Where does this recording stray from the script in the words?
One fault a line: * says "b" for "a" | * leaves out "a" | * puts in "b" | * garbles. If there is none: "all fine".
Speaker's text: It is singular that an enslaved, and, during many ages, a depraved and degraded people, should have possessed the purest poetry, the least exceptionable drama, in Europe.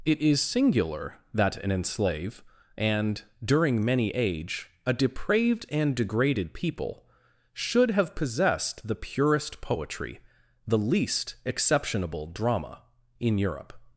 * says "enslave" for "enslaved"
* says "age" for "ages"